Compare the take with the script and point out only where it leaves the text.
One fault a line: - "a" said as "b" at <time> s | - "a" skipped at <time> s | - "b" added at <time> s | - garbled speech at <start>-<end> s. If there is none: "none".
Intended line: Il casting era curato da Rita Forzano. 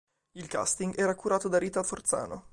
none